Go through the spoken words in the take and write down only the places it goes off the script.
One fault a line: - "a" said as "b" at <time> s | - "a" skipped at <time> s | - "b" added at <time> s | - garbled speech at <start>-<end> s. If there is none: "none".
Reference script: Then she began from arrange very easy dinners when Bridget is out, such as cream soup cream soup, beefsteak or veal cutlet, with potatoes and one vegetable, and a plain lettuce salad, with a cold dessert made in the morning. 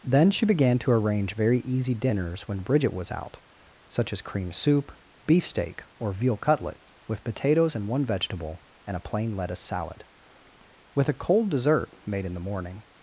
- "from" said as "to" at 0.8 s
- "is" said as "was" at 2.9 s
- "cream soup" skipped at 4.9 s